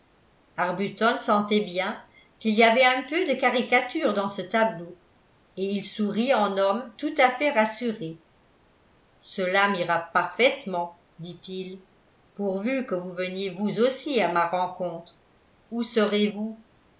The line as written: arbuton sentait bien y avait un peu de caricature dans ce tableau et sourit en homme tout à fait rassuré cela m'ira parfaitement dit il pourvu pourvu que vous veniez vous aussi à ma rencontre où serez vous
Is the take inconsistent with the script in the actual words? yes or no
yes